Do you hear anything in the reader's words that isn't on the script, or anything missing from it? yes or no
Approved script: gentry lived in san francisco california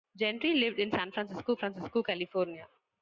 yes